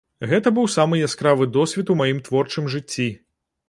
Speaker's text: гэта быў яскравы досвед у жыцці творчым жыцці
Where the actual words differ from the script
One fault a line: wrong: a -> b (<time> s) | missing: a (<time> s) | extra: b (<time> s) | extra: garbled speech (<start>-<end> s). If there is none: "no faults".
extra: самы (0.8 s)
wrong: жыцці -> маім (2.0 s)